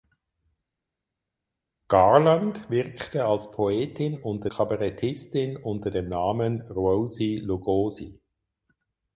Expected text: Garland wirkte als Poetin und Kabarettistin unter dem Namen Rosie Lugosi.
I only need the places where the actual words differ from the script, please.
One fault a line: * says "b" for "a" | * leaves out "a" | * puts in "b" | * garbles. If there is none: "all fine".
* says "unter" for "und"